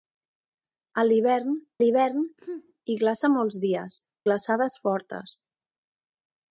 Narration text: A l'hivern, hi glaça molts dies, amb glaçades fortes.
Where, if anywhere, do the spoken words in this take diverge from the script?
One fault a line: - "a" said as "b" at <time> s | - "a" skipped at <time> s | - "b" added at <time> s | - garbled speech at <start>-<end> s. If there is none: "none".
- "l'hivern" added at 1.8 s
- "amb" skipped at 4.0 s